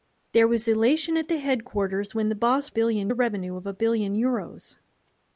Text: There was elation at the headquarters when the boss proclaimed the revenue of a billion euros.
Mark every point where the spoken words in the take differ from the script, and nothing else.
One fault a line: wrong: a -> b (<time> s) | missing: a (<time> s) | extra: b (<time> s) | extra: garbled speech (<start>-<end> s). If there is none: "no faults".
wrong: proclaimed -> billion (2.7 s)